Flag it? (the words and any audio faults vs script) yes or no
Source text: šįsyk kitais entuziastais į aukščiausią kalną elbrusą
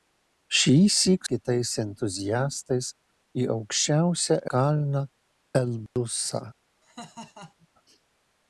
yes